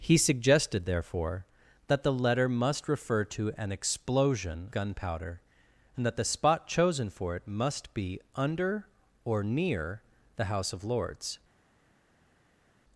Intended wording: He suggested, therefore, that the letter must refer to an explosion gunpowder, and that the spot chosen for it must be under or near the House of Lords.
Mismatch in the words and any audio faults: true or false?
false